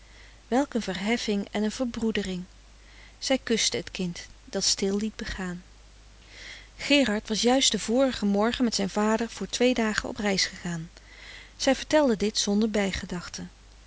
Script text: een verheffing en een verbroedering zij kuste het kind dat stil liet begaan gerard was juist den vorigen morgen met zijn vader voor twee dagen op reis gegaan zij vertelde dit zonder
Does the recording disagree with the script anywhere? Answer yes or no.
no